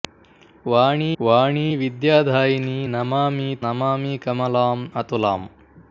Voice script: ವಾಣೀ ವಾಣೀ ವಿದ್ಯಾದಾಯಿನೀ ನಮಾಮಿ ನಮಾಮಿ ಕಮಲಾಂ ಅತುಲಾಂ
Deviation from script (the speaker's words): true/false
false